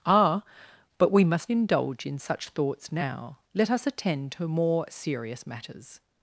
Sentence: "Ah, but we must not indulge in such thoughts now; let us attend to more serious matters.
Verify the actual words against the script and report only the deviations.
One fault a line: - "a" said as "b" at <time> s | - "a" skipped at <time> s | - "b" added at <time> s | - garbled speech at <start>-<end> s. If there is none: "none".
- "not" skipped at 1.5 s